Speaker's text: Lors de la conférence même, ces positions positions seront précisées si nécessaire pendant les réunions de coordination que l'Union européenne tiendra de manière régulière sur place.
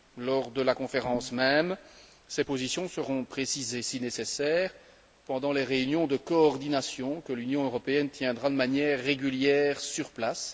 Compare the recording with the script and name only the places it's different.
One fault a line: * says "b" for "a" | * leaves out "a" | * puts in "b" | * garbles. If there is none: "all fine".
* leaves out "positions"